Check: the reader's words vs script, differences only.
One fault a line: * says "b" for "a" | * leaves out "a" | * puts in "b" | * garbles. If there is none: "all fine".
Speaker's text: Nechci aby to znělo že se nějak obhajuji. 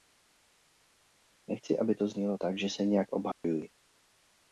* puts in "tak"